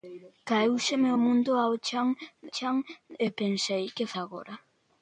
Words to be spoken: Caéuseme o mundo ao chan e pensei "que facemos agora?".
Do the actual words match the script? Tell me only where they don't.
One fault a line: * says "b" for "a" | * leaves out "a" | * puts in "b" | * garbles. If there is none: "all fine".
* puts in "chan"
* leaves out "facemos"